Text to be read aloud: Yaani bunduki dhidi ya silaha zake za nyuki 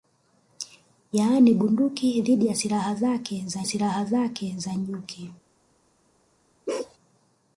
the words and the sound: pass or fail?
fail